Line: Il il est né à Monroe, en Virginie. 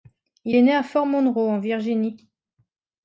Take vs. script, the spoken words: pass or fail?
fail